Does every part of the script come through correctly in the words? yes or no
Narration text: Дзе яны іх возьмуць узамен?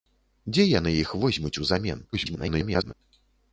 no